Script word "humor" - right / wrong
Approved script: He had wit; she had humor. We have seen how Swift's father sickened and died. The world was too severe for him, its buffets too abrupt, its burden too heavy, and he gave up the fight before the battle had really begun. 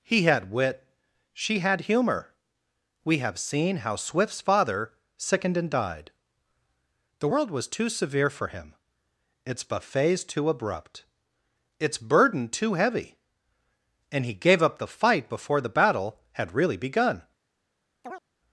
right